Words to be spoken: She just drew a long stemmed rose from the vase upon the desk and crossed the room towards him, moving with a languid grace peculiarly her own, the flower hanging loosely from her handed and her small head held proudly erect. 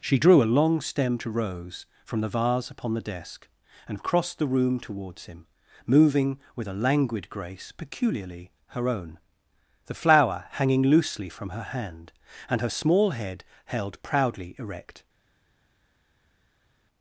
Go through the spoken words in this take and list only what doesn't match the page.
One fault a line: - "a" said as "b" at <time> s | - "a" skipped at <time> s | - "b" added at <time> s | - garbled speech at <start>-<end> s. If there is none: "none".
- "just" skipped at 0.2 s
- "handed" said as "hand" at 11.6 s